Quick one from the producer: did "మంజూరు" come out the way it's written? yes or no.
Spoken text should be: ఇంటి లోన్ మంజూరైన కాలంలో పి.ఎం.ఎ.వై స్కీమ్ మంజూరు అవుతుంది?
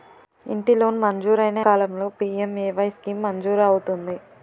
yes